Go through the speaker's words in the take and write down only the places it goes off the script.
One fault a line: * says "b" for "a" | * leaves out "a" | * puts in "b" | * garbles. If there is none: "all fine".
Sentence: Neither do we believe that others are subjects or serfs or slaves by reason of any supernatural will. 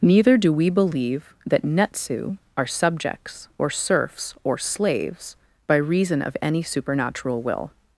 * says "netsu" for "others"